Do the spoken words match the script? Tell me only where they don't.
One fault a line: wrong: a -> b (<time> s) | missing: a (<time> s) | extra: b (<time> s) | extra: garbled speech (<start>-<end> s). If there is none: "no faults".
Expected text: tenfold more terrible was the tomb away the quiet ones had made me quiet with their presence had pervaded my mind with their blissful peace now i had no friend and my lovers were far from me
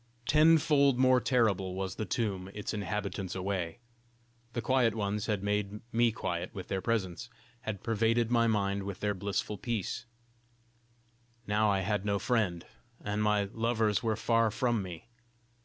extra: its inhabitants (2.5 s)